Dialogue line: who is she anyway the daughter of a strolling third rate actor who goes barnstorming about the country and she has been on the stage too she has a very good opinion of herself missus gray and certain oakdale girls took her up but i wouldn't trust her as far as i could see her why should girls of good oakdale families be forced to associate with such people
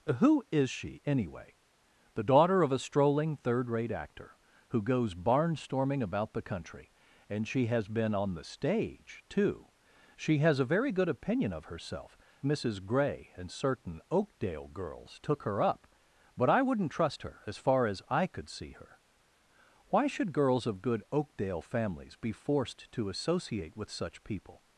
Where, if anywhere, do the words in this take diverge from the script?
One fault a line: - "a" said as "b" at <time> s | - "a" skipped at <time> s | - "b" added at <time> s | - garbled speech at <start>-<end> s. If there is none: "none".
none